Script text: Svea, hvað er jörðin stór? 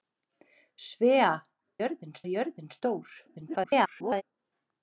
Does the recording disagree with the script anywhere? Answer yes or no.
yes